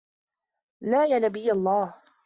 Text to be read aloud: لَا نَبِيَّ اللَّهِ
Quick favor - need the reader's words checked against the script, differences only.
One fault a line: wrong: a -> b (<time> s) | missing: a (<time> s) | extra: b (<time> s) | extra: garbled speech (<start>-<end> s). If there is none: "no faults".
extra: يَا (1.1 s)